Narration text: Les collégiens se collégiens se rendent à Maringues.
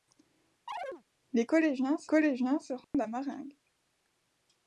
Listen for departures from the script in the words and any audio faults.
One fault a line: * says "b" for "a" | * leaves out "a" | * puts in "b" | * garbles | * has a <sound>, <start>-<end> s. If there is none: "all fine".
* has a chirp, 0.7-1.0 s
* has a dropout, 2.8-2.9 s